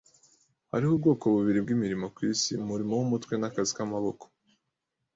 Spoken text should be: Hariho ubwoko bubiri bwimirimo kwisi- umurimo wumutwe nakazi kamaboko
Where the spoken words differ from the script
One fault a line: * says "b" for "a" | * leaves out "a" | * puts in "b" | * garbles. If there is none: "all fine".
all fine